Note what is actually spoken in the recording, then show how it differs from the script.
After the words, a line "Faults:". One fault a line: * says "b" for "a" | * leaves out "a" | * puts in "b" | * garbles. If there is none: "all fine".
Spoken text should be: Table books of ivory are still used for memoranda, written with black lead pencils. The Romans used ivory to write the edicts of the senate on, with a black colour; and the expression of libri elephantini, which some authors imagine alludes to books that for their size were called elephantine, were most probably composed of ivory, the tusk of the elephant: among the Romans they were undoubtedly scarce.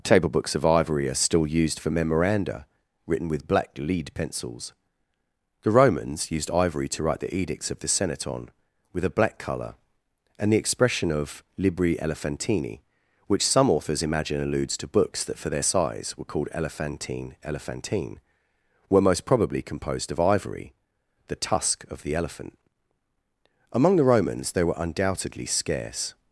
Table books of ivory are still used for memoranda, written with black lead pencils. The Romans used ivory to write the edicts of the senate on, with a black colour; and the expression of libri elephantini, which some authors imagine alludes to books that for their size were called elephantine elephantine, were most probably composed of ivory, the tusk of the elephant: among the Romans they were undoubtedly scarce.
Faults:
* puts in "elephantine"